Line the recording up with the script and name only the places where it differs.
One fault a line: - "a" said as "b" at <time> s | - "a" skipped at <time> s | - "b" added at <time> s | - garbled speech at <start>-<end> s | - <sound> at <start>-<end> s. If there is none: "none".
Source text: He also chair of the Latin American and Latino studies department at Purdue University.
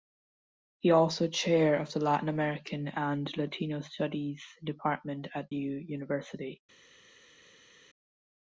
- "Purdue" skipped at 5.5 s